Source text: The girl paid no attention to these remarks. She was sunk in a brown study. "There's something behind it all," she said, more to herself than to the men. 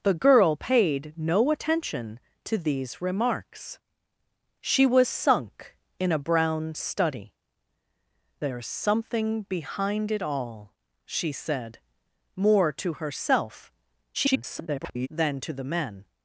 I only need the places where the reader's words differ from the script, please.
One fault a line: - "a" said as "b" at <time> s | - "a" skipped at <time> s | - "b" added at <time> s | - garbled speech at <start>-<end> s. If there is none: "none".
- garbled speech at 14.1-15.1 s